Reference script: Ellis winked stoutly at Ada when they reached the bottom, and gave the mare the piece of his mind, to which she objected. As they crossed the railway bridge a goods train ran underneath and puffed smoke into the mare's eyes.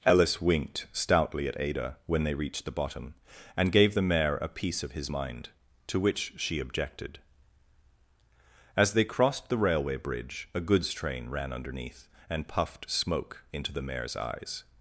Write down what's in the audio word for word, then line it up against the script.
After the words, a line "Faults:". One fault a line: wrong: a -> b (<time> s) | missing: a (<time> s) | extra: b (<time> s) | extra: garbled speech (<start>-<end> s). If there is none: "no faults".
Ellis winked stoutly at Ada when they reached the bottom, and gave the mare a piece of his mind, to which she objected. As they crossed the railway bridge a goods train ran underneath and puffed smoke into the mare's eyes.
Faults:
wrong: the -> a (4.4 s)